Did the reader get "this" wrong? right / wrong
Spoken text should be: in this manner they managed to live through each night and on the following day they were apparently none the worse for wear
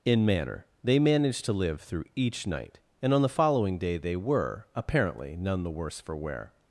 wrong